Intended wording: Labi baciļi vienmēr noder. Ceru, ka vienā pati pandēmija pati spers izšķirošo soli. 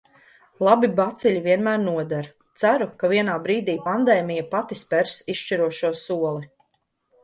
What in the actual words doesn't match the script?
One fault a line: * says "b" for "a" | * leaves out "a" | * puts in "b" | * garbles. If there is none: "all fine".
* says "brīdī" for "pati"